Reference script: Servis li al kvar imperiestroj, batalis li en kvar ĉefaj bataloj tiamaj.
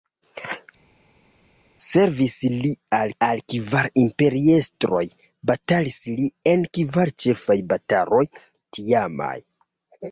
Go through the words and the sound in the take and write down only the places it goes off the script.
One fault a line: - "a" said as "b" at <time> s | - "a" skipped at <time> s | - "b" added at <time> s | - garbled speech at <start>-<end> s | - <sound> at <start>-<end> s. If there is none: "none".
- "al" added at 3.3 s